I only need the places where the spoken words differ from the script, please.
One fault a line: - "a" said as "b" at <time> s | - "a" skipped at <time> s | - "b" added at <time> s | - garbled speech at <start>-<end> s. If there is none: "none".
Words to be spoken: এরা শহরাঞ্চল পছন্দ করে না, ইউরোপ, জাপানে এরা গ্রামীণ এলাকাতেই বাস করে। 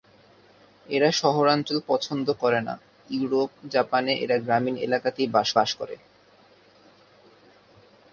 - "বাস" added at 5.6 s